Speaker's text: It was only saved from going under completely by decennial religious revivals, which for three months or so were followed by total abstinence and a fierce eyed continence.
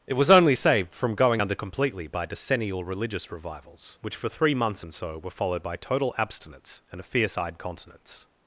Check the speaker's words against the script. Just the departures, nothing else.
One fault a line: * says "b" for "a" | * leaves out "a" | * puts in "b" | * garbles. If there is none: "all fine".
* says "and" for "or"